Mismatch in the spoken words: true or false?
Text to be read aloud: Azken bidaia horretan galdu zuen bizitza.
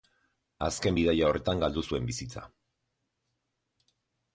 false